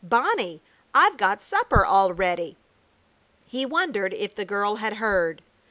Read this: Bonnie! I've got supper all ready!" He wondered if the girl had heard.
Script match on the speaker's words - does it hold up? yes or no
yes